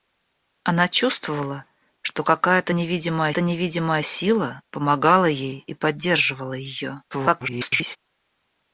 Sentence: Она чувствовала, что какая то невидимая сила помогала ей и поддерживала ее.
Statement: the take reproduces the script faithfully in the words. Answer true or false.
false